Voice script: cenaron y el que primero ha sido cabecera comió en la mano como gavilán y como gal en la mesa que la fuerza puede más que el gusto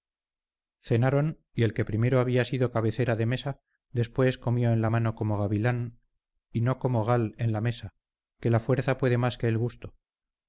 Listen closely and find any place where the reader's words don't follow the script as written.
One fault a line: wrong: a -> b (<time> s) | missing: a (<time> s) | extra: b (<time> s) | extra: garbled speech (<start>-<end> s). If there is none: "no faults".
wrong: ha -> había (2.2 s)
extra: de mesa después (3.1 s)
extra: no (6.6 s)